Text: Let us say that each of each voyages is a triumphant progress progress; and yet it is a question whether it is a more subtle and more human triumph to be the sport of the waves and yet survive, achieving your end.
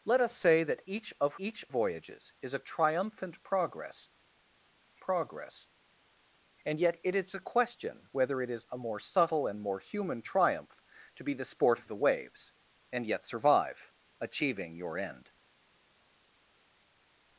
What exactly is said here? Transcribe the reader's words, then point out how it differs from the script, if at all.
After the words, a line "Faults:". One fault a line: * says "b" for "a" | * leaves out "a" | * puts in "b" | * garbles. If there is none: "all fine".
Let us say that each of each voyages is a triumphant progress progress; and yet it is a question whether it is a more subtle and more human triumph to be the sport of the waves and yet survive, achieving your end.
Faults:
all fine